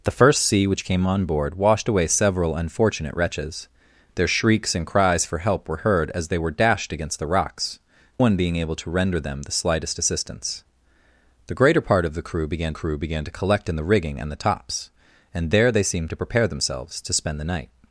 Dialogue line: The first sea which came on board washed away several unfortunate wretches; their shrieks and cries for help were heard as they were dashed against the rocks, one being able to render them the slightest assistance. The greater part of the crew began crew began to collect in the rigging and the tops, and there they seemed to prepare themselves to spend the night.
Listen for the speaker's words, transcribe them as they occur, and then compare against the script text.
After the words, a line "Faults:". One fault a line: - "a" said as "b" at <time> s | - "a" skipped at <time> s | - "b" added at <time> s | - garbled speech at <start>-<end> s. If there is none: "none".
The first sea which came on board washed away several unfortunate wretches; their shrieks and cries for help were heard as they were dashed against the rocks, one being able to render them the slightest assistance. The greater part of the crew began crew began to collect in the rigging and the tops, and there they seemed to prepare themselves to spend the night.
Faults:
none